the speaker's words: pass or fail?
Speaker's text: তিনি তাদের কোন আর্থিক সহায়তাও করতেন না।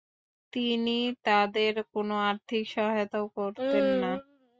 pass